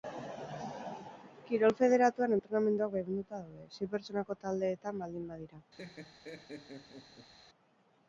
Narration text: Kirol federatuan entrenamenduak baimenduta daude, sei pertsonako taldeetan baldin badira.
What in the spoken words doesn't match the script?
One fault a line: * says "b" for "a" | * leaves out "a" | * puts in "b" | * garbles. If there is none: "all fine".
all fine